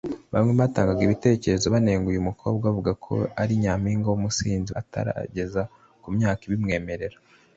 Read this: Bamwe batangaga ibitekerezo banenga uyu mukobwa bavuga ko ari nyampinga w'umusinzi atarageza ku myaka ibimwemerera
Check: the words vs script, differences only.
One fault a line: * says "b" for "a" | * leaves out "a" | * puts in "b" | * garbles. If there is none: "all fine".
all fine